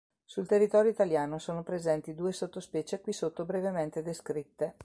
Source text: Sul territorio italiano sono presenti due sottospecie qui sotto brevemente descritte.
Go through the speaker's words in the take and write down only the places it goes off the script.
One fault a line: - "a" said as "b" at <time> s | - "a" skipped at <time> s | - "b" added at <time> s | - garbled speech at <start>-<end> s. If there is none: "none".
none